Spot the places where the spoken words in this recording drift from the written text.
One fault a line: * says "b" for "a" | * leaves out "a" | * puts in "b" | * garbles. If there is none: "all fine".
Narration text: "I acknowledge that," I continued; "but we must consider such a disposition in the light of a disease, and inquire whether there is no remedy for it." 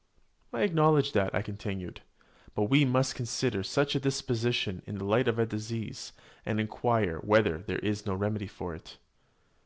all fine